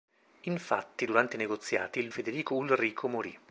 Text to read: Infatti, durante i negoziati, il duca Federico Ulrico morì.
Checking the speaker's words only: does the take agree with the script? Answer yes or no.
no